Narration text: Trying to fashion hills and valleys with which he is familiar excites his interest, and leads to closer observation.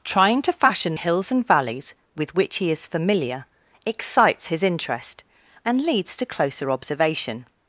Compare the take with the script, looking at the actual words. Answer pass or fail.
pass